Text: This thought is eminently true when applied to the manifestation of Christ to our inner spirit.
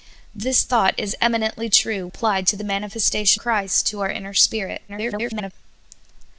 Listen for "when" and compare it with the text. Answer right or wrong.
wrong